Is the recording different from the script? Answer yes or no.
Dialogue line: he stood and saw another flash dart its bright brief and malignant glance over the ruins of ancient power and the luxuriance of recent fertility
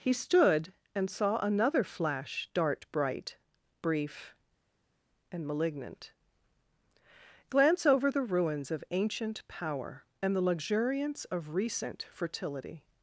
yes